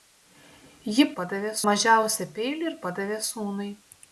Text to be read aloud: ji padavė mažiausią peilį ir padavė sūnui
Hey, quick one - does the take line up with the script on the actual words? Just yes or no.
yes